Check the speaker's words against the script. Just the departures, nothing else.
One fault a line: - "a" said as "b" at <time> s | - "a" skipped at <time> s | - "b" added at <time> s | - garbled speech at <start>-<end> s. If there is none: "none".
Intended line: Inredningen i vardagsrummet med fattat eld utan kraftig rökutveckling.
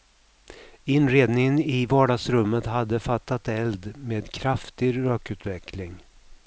- "med" said as "hade" at 2.7 s
- "utan" said as "med" at 4.0 s